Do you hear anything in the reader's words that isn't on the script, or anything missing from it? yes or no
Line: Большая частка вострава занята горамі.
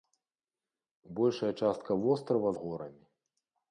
yes